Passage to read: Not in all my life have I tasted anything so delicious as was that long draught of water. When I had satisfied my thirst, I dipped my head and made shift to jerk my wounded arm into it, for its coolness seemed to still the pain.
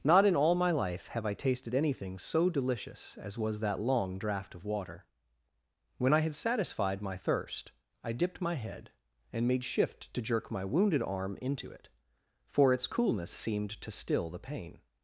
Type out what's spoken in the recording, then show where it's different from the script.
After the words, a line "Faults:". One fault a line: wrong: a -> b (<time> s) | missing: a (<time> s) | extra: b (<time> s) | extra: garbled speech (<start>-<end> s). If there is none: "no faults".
Not in all my life have I tasted anything so delicious as was that long draught of water. When I had satisfied my thirst, I dipped my head and made shift to jerk my wounded arm into it, for its coolness seemed to still the pain.
Faults:
no faults